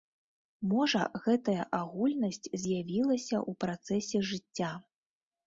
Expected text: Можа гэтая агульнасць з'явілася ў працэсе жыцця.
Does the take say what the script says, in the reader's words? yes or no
yes